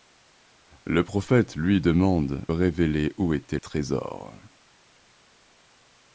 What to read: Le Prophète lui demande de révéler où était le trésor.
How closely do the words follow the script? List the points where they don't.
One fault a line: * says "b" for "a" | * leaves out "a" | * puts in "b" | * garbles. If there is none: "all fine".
* leaves out "de"
* leaves out "le"